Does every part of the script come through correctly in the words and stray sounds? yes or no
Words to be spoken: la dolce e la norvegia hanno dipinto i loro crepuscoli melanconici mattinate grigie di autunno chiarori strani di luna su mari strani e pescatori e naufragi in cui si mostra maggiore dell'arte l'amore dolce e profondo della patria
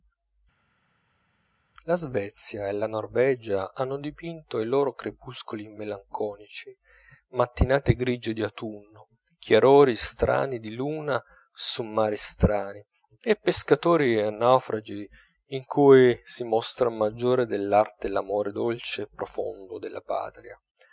no